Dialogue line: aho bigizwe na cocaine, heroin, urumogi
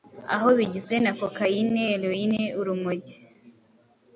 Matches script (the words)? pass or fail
pass